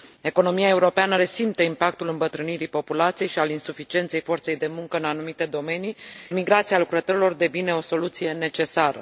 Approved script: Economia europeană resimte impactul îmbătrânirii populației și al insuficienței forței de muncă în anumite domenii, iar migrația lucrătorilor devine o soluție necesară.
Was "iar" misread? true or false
true